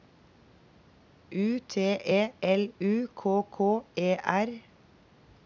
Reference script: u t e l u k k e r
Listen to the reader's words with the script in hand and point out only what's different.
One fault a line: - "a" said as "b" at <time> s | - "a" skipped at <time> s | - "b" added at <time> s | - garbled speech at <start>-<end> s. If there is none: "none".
none